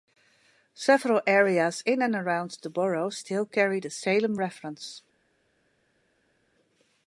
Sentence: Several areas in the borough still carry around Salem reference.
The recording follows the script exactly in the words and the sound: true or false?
false